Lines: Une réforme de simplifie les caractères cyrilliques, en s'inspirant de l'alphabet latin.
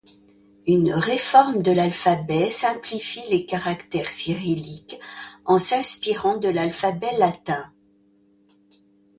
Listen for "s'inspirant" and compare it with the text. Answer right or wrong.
right